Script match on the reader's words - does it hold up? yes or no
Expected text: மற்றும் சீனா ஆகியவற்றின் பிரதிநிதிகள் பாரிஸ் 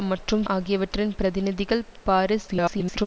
no